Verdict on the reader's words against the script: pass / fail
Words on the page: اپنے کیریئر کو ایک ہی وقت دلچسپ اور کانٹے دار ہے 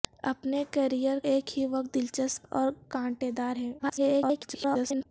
fail